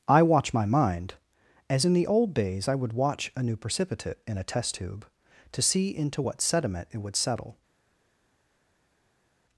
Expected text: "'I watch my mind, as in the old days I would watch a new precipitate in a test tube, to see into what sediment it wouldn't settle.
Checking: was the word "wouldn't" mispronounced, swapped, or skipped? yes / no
yes